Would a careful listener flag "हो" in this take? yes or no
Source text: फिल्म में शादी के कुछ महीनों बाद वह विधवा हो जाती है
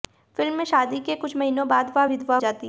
yes